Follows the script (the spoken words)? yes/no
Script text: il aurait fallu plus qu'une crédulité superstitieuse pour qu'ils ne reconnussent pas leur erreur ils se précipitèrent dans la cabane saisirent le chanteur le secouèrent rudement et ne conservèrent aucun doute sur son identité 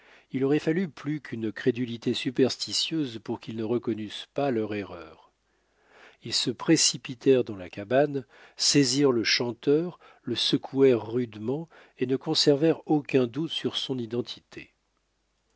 yes